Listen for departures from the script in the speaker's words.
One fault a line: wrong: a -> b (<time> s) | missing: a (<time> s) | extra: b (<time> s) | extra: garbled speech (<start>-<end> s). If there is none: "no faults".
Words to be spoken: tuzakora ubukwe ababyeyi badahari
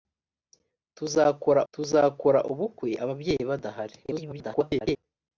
extra: tuzakora (1.7 s)
extra: garbled speech (4.0-5.0 s)